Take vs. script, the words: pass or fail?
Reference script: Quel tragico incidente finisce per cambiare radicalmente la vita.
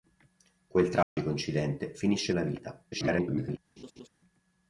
fail